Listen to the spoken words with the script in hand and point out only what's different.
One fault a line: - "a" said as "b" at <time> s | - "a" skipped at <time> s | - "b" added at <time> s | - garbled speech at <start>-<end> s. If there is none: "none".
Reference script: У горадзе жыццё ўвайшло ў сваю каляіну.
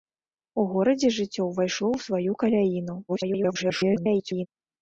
- garbled speech at 3.1-4.5 s